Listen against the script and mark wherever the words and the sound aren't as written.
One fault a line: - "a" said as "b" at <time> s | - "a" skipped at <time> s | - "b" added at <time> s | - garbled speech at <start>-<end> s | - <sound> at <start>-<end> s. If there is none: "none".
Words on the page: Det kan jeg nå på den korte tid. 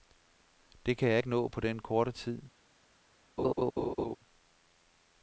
- "ikke" added at 1.2 s
- laugh at 3.4-4.2 s